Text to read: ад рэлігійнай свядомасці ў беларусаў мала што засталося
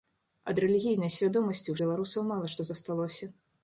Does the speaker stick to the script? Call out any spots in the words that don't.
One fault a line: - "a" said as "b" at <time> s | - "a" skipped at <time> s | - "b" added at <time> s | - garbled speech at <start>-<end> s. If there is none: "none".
none